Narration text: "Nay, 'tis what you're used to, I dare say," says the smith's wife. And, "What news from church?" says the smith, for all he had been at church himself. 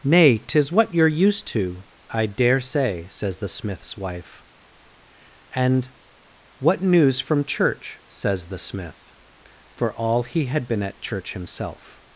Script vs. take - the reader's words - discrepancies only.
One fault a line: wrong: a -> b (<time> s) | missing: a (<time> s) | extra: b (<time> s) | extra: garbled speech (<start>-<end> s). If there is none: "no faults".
no faults